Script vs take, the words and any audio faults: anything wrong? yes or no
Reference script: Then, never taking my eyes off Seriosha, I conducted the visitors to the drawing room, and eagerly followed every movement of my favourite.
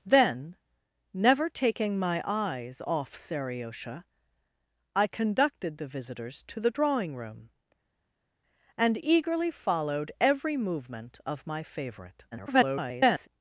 yes